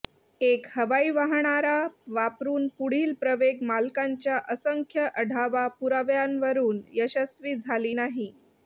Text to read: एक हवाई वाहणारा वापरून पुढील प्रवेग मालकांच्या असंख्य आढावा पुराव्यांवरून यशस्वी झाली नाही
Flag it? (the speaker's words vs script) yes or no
no